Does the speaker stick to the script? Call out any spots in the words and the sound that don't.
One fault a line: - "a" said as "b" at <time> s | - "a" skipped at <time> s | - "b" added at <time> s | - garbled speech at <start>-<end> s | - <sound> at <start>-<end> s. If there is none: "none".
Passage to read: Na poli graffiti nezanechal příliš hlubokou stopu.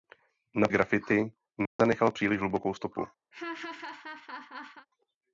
- "poli" skipped at 0.7 s
- dropout at 1.7-1.8 s
- laugh at 3.3-4.9 s